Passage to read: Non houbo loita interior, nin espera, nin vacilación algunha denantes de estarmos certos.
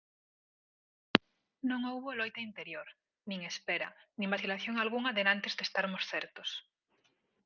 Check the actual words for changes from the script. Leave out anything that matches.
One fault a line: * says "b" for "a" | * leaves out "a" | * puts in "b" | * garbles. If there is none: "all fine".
all fine